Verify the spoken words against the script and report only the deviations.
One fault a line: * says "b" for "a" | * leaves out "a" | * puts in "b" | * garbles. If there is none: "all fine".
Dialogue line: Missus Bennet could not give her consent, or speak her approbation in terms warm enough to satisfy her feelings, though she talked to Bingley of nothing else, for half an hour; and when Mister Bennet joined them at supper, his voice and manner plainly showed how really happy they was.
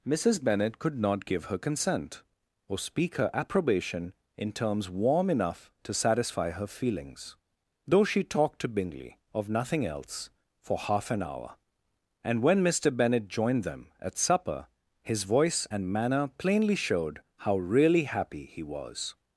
* says "he" for "they"